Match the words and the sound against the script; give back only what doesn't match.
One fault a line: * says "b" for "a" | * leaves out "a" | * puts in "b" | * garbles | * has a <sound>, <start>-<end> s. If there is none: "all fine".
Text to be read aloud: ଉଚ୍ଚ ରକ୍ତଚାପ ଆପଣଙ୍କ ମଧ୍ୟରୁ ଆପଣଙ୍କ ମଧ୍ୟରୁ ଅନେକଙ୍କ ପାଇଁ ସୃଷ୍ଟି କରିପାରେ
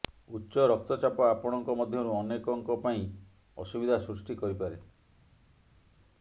* leaves out "ଆପଣଙ୍କ ମଧ୍ୟରୁ"
* puts in "ଅସୁବିଧା"